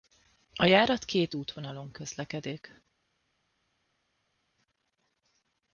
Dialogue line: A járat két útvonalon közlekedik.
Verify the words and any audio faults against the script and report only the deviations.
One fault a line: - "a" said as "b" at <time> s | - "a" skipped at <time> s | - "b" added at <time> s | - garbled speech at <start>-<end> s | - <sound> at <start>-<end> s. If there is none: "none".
none